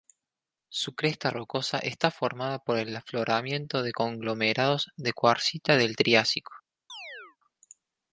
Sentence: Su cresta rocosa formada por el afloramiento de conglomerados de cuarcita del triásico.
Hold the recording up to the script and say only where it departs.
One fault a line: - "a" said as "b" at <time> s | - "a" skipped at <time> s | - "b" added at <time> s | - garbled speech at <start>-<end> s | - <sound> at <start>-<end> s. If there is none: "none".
- "está" added at 1.8 s
- chirp at 6.9-7.4 s